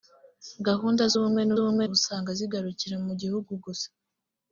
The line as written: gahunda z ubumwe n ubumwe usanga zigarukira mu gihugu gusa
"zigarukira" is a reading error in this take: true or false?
false